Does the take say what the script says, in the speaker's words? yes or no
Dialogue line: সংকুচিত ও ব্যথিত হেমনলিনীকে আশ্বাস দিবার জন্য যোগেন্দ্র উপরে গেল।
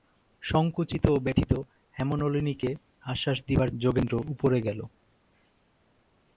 no